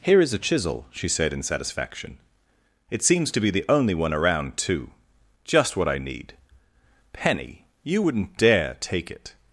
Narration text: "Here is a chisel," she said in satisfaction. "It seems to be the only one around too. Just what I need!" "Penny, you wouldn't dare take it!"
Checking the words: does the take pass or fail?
pass